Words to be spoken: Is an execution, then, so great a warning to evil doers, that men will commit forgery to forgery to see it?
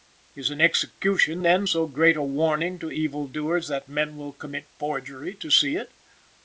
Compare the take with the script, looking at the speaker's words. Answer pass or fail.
fail